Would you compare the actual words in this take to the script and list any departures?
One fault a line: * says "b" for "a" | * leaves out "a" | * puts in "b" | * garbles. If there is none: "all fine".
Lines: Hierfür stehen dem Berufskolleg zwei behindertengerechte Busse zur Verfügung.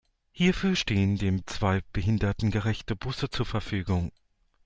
* leaves out "Berufskolleg"